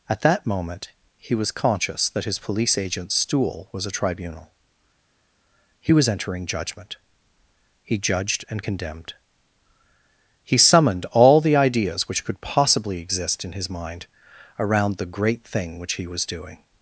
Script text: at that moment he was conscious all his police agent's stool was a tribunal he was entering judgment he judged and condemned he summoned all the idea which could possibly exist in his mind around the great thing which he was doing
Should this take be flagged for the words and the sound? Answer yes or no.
yes